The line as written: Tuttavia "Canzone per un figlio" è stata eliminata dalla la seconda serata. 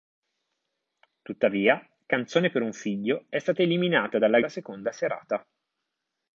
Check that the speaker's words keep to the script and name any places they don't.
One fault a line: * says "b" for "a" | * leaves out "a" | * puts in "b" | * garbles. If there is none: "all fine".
all fine